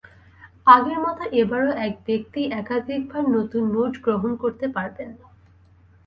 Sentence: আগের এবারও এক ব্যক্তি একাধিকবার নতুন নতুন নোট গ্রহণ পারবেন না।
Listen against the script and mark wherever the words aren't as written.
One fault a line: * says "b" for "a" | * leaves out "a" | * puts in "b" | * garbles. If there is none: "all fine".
* puts in "মতো"
* leaves out "নতুন"
* puts in "করতে"